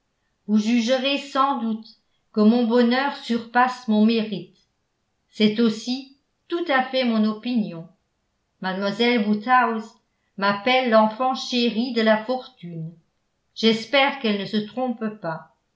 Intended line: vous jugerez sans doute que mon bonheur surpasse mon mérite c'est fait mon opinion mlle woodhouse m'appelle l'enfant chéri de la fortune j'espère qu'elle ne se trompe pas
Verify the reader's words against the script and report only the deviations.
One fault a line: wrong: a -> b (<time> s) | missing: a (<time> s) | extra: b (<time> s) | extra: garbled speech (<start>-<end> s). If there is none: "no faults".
extra: aussi tout à (5.6 s)